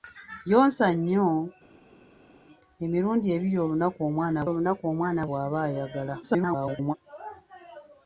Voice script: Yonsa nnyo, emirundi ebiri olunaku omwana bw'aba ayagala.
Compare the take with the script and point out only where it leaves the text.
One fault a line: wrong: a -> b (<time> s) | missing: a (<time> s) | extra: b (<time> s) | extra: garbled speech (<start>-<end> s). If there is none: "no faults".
extra: olunaku omwana (4.5 s)
extra: garbled speech (6.2-7.0 s)